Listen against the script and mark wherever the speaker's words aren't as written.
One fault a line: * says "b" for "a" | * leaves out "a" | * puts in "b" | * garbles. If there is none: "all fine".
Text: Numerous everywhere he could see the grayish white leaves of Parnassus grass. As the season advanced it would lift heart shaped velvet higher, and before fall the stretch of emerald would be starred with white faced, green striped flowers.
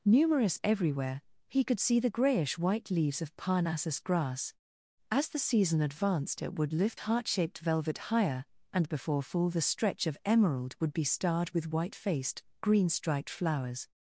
all fine